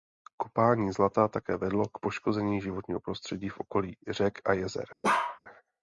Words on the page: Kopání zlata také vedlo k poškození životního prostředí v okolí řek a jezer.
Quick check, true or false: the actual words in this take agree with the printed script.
true